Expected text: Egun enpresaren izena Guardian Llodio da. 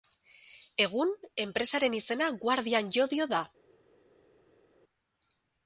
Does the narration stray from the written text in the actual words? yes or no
no